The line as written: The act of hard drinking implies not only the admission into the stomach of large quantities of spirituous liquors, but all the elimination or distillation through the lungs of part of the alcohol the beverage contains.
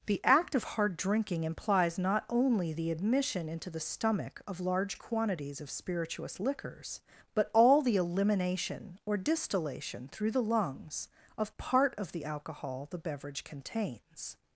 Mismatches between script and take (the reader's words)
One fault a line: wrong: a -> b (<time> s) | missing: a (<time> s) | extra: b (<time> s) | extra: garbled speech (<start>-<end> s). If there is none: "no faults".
no faults